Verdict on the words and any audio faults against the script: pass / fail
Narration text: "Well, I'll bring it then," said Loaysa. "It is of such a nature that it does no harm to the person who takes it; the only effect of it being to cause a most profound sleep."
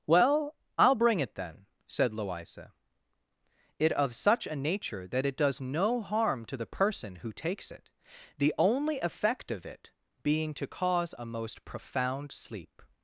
fail